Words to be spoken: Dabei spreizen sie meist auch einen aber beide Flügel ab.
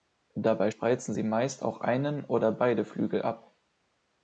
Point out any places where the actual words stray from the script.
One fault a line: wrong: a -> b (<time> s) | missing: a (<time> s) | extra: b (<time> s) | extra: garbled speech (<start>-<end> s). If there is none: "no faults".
wrong: aber -> oder (2.2 s)